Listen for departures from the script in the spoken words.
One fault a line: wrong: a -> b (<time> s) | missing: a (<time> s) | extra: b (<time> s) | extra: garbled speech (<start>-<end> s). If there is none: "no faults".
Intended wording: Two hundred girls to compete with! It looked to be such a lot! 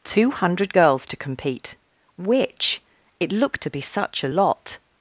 wrong: with -> which (2.2 s)